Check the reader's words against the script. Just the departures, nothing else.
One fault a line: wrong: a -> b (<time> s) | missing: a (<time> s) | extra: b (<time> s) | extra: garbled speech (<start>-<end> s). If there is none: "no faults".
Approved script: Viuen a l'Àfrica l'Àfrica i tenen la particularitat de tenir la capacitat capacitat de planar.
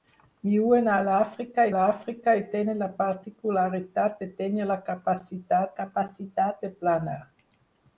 no faults